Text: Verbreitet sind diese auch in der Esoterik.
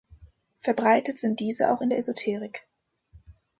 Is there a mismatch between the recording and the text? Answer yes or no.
no